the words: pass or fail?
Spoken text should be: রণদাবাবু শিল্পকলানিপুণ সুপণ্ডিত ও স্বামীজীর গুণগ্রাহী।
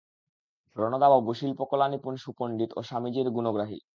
pass